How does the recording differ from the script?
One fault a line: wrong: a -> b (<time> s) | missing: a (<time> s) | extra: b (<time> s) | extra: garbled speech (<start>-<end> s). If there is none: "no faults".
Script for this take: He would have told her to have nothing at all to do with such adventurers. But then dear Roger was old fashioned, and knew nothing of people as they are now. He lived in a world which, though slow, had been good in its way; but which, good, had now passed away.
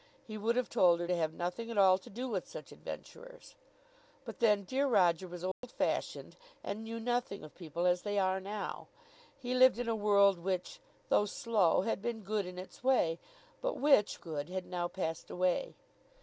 no faults